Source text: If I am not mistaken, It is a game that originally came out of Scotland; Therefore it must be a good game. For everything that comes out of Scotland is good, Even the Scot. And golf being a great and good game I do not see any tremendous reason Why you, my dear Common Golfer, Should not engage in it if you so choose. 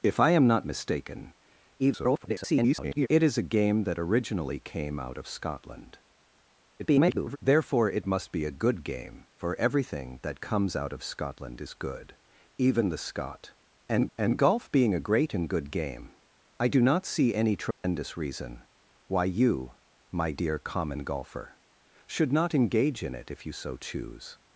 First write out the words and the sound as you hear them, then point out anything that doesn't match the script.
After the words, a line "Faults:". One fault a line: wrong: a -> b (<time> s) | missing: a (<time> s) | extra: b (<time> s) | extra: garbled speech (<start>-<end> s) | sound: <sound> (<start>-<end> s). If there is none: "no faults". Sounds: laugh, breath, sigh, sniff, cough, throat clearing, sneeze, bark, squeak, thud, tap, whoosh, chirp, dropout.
If I am not mistaken, [garbled] It is a game that originally came out of Scotland; [garbled] Therefore it must be a good game. For everything that comes out of Scotland is good, Even the Scot. And and golf being a great and good game I do not see any tremendous reason Why you, my dear Common Golfer, Should not engage in it if you so choose.
Faults:
extra: garbled speech (1.8-3.1 s)
extra: garbled speech (6.8-7.4 s)
extra: and (14.2 s)
sound: dropout (17.7-17.8 s)